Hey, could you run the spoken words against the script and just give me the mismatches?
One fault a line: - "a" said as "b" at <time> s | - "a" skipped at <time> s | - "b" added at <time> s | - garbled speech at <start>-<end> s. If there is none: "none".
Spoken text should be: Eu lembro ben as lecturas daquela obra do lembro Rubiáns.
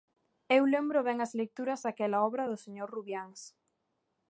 - "lembro" said as "señor" at 2.6 s